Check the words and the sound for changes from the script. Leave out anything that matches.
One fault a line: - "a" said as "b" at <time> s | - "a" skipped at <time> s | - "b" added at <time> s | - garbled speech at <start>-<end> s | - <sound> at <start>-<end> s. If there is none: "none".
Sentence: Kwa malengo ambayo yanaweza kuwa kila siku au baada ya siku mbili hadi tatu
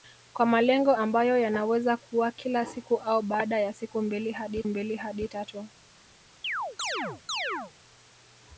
- "mbili hadi" added at 4.6 s
- chirp at 6.4-7.7 s